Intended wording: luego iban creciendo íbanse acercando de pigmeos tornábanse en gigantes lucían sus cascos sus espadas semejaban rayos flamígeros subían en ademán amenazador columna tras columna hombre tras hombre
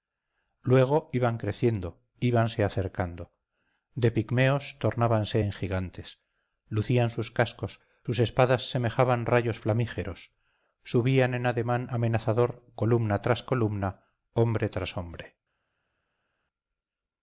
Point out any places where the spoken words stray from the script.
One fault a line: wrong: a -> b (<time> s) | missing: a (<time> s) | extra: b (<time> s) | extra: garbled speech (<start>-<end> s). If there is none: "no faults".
no faults